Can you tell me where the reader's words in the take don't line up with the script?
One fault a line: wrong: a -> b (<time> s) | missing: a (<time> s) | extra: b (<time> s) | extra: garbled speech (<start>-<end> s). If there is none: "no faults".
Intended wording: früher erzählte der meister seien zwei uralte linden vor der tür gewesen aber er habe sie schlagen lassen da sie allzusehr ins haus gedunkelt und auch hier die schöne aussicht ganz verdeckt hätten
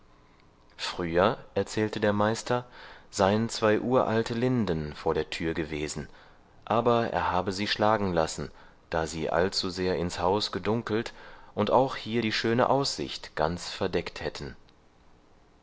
no faults